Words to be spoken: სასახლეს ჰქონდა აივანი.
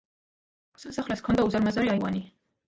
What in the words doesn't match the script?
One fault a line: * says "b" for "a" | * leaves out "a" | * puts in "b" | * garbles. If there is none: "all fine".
* puts in "უზარმაზარი"